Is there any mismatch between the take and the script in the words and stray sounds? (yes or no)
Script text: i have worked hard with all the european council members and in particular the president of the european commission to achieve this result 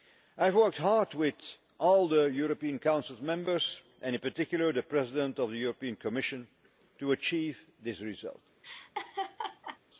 yes